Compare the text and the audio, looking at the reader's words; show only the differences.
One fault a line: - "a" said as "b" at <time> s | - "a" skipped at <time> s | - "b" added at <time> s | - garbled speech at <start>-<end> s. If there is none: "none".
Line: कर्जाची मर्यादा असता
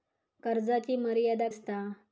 none